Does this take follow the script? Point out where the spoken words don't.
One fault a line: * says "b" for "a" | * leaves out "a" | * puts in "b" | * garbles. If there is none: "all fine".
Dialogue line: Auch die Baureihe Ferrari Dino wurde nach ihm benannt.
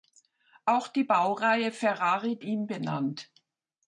* leaves out "Dino wurde nach"